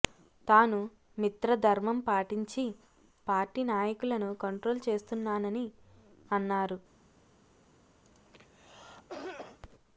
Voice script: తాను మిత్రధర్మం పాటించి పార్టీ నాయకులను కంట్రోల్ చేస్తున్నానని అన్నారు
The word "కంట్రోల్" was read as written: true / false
true